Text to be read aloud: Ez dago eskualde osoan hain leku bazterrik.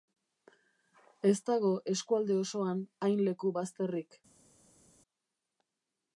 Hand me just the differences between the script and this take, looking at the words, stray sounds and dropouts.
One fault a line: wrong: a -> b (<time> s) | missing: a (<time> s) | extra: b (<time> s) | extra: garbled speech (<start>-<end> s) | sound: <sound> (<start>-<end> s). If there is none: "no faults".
no faults